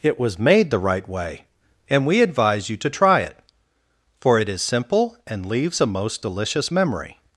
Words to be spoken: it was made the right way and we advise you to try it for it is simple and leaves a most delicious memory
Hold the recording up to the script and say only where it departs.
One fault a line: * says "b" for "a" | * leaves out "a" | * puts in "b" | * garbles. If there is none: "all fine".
all fine